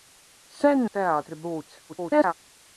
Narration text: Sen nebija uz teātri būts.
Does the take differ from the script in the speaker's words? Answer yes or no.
yes